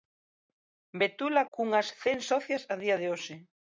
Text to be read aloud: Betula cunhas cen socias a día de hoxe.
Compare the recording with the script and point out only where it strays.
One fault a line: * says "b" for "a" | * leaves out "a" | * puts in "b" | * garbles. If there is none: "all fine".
all fine